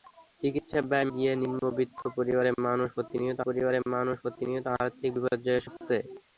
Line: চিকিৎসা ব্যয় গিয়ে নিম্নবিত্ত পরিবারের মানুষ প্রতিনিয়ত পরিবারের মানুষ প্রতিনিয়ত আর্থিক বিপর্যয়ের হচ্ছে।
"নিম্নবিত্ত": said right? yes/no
yes